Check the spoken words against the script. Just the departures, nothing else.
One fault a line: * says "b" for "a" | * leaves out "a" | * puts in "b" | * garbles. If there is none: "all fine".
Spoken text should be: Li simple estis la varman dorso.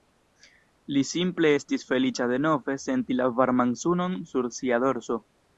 * puts in "feliĉa denove senti"
* puts in "sunon sur sia"